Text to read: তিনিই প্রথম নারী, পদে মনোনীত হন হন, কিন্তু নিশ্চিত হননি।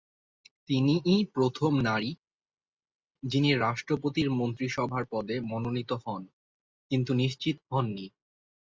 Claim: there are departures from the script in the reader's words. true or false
true